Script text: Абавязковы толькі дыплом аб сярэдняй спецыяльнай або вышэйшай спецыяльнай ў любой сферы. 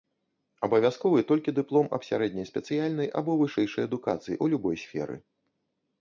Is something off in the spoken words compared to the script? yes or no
yes